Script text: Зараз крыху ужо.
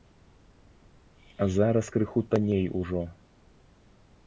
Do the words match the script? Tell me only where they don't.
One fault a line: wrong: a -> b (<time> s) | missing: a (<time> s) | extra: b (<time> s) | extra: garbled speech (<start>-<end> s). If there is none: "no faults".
extra: танней (2.2 s)